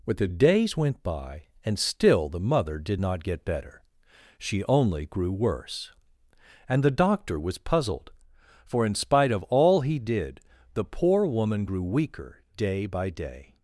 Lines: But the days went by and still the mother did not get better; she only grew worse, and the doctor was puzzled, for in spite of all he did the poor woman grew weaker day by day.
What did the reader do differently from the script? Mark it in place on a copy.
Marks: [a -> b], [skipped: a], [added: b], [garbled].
But the days went by and still the mother did not get better; she only grew worse, and the doctor was puzzled, for in spite of all he did the poor woman grew weaker day by day.